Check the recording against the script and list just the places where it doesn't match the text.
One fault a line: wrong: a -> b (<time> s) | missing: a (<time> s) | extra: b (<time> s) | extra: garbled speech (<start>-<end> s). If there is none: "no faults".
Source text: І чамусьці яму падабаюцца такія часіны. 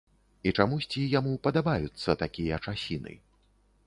no faults